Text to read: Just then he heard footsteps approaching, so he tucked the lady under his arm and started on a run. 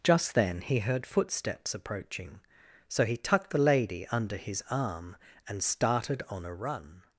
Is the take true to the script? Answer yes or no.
yes